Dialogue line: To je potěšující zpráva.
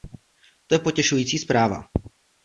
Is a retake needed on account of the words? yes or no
no